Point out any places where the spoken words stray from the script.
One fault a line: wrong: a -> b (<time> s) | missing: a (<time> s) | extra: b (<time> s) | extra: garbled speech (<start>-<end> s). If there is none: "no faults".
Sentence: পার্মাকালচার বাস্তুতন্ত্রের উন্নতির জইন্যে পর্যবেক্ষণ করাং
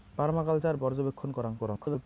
missing: বাস্তুতন্ত্রের উন্নতির জইন্যে (0.8 s)
extra: garbled speech (1.6-2.0 s)